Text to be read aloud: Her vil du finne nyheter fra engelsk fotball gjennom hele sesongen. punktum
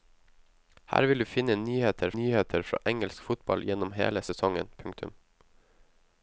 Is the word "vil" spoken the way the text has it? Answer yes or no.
yes